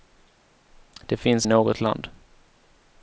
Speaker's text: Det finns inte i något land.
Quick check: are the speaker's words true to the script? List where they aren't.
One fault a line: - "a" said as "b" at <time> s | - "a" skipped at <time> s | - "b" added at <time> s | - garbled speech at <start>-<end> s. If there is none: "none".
- "inte" skipped at 1.5 s